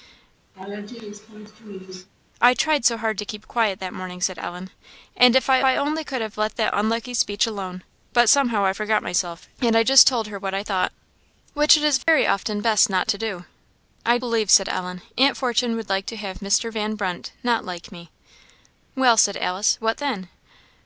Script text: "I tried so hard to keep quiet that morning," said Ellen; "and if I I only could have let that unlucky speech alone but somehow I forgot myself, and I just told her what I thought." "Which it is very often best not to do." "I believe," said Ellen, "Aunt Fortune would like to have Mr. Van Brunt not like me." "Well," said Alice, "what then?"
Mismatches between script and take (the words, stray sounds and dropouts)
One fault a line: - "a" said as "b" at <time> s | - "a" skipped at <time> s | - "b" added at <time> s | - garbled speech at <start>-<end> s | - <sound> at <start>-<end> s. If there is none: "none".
- laugh at 0.5-2.1 s
- dropout at 12.0-12.1 s